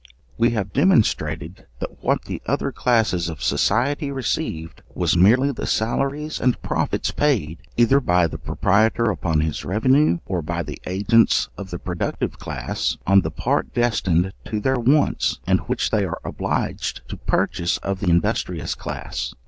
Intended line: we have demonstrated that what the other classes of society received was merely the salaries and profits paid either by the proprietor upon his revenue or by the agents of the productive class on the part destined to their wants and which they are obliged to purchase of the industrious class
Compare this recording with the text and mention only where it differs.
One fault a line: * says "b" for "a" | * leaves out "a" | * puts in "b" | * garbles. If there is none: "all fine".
all fine